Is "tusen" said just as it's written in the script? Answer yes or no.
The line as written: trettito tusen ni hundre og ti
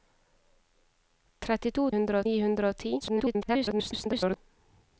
no